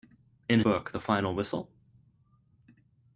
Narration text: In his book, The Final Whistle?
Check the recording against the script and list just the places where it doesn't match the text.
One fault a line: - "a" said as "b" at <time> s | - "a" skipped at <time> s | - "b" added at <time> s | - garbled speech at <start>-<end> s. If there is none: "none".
- "his" skipped at 0.6 s